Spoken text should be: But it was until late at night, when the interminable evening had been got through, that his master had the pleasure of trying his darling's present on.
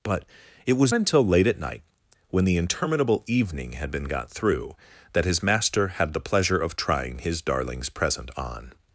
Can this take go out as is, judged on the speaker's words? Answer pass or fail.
pass